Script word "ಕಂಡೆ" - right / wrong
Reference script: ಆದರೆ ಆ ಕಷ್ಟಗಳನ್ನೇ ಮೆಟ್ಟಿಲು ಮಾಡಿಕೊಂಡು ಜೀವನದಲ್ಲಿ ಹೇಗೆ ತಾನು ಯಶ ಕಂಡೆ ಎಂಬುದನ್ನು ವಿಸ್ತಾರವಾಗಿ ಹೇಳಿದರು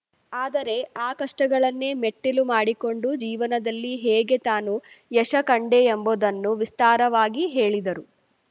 right